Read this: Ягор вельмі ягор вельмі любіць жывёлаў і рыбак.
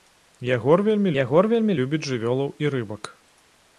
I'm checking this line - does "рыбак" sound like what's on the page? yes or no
yes